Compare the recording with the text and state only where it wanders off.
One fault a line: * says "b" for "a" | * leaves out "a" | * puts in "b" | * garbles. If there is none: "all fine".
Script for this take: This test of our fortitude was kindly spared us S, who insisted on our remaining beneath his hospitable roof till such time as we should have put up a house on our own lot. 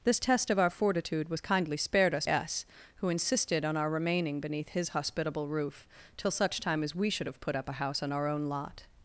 all fine